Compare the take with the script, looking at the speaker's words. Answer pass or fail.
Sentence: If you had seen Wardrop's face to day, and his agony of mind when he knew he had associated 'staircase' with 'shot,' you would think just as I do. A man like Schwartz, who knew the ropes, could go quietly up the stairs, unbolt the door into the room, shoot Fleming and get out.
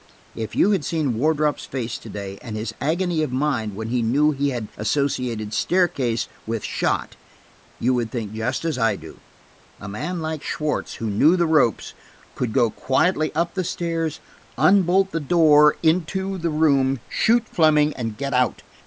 pass